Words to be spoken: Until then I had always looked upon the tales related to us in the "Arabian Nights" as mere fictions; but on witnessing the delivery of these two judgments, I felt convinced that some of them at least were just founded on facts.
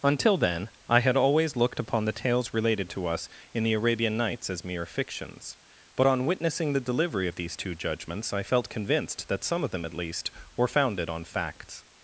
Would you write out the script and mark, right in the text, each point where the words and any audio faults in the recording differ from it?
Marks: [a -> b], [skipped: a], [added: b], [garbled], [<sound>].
Until then I had always looked upon the tales related to us in the "Arabian Nights" as mere fictions; but on witnessing the delivery of these two judgments, I felt convinced that some of them at least were [skipped: just] founded on facts.